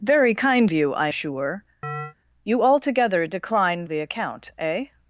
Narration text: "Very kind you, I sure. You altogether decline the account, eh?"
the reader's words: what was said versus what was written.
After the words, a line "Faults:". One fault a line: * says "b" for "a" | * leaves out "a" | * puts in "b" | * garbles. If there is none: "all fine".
"Very kind you, I sure. You altogether decline the account, eh?"
Faults:
all fine